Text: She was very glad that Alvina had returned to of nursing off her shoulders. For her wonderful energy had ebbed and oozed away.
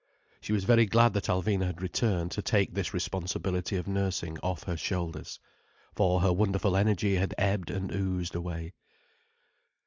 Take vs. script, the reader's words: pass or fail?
fail